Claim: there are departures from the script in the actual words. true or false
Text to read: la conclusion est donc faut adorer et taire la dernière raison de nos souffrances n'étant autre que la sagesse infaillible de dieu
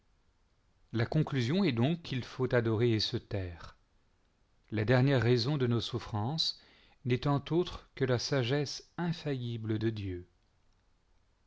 true